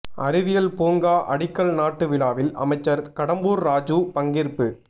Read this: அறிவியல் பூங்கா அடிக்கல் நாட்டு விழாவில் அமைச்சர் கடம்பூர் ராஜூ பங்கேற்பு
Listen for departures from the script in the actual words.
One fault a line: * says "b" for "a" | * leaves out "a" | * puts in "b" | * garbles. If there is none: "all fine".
all fine